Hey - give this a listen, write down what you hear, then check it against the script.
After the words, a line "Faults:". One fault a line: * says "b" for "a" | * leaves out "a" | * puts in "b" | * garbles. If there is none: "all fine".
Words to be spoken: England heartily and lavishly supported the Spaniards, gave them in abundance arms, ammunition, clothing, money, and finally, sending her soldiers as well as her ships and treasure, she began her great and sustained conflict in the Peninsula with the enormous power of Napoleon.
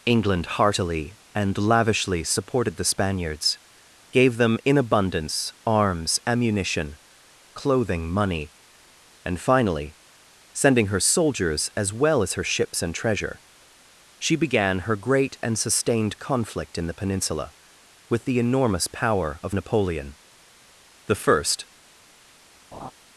England heartily and lavishly supported the Spaniards, gave them in abundance arms, ammunition, clothing, money, and finally, sending her soldiers as well as her ships and treasure, she began her great and sustained conflict in the Peninsula with the enormous power of Napoleon. The first
Faults:
* puts in "The first"